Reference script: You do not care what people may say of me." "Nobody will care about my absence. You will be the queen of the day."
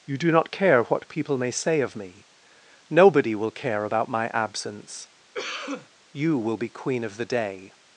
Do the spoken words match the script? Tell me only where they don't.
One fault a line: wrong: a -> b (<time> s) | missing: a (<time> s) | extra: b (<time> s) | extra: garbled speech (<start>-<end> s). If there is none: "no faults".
missing: the (6.7 s)